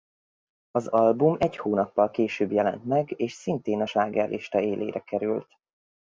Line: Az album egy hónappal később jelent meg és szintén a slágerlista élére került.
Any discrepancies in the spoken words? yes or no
no